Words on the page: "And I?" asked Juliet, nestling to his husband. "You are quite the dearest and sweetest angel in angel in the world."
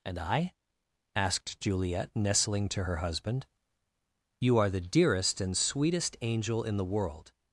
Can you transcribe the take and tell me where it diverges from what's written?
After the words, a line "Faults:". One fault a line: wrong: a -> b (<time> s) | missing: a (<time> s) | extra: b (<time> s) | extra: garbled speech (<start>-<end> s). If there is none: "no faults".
"And I?" asked Juliet, nestling to her husband. "You are the dearest and sweetest angel in the world."
Faults:
wrong: his -> her (2.8 s)
missing: quite (4.7 s)
missing: angel in (6.8 s)